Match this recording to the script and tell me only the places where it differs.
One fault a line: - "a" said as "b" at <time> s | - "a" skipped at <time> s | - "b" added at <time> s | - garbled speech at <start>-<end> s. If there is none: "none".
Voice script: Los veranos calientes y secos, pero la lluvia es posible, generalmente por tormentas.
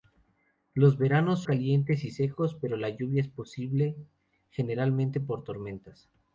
none